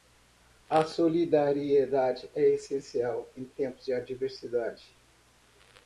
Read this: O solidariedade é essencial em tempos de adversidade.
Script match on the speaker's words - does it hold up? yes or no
no